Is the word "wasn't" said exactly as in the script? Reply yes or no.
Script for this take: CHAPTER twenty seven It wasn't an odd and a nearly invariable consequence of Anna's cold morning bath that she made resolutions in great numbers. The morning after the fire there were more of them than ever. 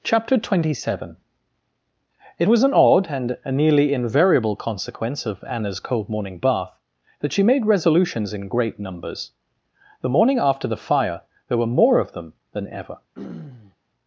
no